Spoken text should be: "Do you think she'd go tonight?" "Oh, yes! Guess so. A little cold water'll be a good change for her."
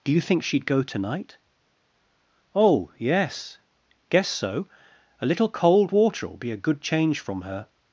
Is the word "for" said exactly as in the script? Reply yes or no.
no